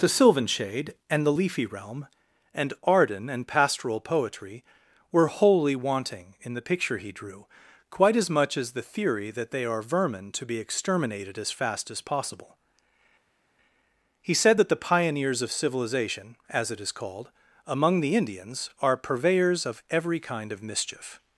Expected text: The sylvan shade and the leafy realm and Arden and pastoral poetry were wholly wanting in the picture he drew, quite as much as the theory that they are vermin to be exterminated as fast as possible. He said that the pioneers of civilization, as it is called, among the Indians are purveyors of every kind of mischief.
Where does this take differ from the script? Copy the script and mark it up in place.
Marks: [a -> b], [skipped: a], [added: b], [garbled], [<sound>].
The sylvan shade and the leafy realm and Arden and pastoral poetry were wholly wanting in the picture he drew, quite as much as the theory that they are vermin to be exterminated as fast as possible. He said that the pioneers of civilization, as it is called, among the Indians are purveyors of every kind of mischief.